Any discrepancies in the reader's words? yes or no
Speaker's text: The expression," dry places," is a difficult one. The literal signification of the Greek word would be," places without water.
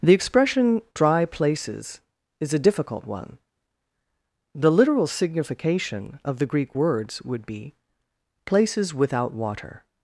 yes